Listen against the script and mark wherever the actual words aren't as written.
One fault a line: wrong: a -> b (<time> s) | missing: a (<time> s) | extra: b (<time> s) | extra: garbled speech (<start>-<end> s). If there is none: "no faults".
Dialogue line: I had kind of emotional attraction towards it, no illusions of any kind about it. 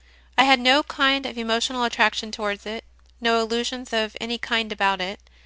extra: no (0.6 s)